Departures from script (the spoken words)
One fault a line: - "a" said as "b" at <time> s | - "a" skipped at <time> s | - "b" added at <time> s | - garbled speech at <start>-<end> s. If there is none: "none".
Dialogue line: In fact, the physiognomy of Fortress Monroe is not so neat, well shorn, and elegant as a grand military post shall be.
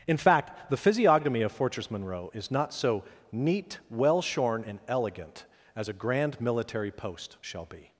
none